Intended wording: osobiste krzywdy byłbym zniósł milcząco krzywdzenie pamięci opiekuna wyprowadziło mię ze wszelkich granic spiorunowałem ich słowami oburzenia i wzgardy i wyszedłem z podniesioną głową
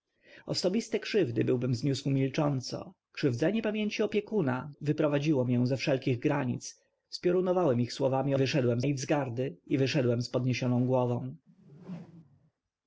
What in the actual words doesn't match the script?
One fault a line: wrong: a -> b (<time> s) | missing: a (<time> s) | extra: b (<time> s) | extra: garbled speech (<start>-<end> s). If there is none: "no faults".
wrong: oburzenia -> wyszedłem (8.4 s)